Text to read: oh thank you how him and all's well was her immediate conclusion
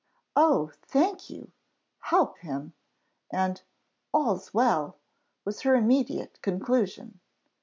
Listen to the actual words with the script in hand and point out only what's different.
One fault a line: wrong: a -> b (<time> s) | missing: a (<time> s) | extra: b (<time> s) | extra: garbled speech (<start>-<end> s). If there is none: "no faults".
no faults